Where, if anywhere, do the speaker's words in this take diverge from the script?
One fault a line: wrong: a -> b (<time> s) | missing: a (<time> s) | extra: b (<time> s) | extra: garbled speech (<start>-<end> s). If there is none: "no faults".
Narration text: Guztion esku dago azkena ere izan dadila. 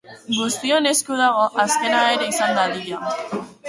no faults